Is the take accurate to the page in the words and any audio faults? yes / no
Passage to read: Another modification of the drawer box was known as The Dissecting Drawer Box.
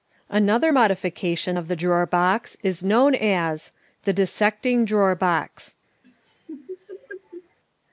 no